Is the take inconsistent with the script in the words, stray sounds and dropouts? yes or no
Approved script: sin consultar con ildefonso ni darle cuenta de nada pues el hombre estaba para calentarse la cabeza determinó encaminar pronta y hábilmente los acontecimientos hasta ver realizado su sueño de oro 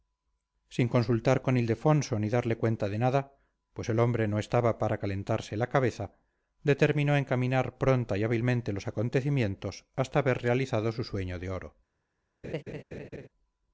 yes